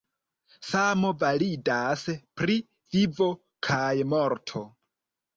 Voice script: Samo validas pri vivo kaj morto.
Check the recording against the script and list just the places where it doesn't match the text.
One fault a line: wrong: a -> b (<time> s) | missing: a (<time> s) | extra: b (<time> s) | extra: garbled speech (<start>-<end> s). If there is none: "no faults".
no faults